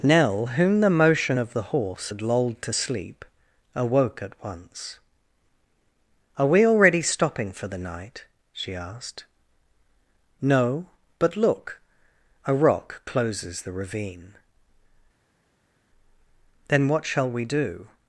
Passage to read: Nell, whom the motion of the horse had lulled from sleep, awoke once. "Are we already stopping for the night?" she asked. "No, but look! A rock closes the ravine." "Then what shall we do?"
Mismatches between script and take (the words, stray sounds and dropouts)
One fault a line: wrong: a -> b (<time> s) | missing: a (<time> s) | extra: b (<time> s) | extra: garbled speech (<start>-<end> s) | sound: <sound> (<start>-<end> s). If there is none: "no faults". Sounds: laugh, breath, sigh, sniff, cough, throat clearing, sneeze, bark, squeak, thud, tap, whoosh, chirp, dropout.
wrong: from -> to (2.6 s)
extra: at (4.2 s)